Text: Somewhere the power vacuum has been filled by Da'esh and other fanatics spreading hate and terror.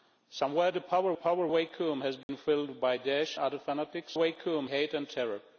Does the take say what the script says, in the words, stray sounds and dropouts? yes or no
no